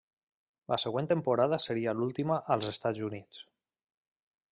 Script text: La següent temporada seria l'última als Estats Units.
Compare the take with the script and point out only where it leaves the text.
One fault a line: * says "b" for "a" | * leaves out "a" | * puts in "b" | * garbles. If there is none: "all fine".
all fine